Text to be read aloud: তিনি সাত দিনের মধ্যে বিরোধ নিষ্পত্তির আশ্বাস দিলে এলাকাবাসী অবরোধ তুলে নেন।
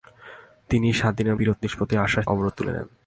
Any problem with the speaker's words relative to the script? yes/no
yes